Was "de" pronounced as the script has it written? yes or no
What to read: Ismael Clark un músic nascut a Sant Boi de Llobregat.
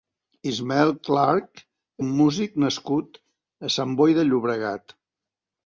yes